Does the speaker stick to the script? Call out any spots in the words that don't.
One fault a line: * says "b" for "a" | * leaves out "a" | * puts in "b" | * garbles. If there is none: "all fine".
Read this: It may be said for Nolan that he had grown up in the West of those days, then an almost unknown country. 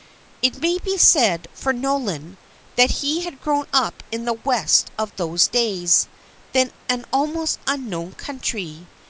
all fine